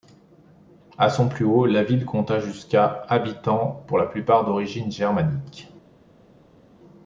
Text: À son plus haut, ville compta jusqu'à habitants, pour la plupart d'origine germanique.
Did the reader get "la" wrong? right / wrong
right